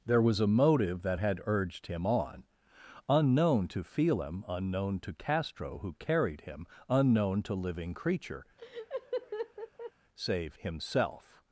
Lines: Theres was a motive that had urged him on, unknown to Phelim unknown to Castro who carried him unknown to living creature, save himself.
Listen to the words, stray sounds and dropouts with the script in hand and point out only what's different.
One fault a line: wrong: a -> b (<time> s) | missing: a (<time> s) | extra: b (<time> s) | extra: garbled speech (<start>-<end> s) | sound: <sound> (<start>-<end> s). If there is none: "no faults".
wrong: Theres -> There (0.1 s)
sound: laugh (8.6-9.9 s)